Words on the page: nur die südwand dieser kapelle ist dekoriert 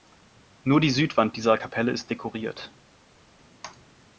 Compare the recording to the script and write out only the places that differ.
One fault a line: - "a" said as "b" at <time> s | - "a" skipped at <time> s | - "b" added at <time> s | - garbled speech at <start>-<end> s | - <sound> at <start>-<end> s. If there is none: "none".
none